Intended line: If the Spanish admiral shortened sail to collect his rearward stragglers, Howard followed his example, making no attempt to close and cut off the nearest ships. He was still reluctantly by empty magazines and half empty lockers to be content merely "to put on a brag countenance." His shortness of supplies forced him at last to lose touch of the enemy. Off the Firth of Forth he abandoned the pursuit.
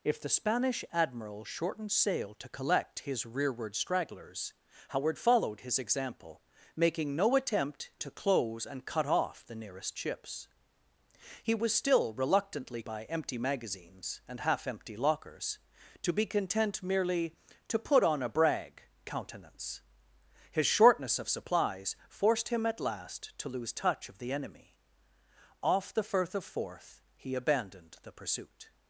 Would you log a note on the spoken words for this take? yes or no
no